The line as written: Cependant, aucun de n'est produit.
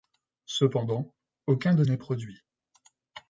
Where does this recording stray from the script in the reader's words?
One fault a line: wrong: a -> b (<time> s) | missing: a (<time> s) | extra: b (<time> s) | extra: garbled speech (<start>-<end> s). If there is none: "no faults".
no faults